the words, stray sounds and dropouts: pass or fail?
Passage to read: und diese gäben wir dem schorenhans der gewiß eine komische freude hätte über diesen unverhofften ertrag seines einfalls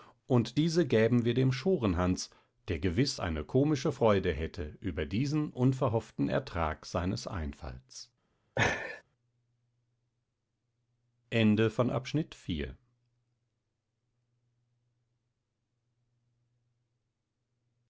fail